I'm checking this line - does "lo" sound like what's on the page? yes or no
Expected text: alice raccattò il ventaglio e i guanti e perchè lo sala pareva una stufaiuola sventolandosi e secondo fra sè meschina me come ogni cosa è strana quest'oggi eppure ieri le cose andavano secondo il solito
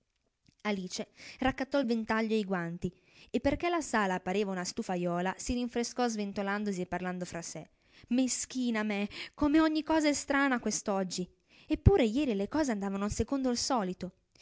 no